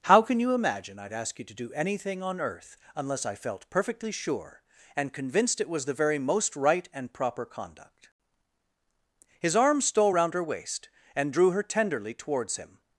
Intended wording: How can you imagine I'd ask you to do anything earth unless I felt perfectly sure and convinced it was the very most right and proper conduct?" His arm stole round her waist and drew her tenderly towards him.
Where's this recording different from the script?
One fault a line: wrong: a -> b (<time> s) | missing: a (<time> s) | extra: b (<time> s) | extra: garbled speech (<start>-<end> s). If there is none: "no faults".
extra: on (2.2 s)